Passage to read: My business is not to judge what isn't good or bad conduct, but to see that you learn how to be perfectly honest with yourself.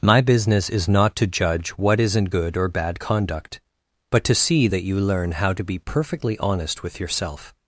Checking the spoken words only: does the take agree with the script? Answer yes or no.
yes